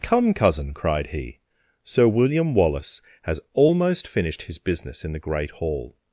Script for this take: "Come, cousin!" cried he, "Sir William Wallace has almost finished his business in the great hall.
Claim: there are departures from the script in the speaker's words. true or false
false